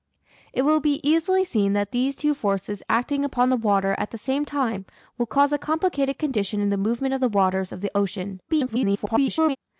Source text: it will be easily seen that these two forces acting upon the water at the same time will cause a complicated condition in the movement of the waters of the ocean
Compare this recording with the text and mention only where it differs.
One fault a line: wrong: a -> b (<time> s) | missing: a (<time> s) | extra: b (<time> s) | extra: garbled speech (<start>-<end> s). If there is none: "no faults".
extra: garbled speech (8.5-9.6 s)